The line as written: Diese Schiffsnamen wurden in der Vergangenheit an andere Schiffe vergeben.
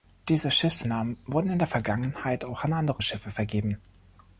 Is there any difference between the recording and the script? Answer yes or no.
yes